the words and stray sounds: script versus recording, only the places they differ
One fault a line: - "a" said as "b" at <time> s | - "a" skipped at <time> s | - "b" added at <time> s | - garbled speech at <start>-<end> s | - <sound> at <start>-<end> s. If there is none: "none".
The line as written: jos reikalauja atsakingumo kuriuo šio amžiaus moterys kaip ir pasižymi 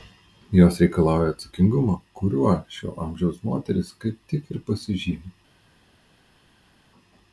- "tik" added at 4.3 s